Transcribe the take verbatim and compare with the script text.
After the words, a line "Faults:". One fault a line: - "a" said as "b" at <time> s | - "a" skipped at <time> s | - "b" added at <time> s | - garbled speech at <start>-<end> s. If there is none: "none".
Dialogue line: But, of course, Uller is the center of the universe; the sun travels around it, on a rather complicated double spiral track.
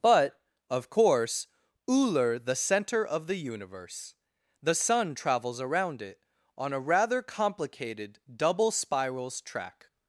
But, of course, Uller the center of the universe; the sun travels around it, on a rather complicated double spirals track.
Faults:
- "is" skipped at 2.4 s
- "spiral" said as "spirals" at 8.7 s